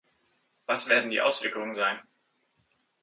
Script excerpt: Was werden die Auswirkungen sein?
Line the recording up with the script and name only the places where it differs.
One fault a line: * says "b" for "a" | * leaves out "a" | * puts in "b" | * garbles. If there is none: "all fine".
all fine